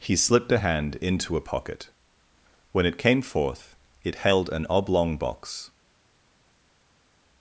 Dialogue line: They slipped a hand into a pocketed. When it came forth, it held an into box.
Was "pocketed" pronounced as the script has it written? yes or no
no